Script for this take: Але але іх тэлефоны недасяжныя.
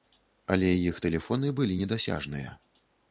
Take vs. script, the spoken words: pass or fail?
fail